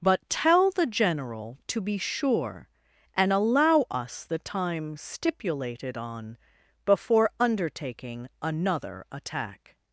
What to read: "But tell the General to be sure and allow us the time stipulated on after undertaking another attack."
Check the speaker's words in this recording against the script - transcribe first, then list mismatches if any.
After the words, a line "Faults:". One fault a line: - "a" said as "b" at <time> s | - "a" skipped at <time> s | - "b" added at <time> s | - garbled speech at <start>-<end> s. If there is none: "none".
"But tell the General to be sure and allow us the time stipulated on before undertaking another attack."
Faults:
- "after" said as "before" at 6.8 s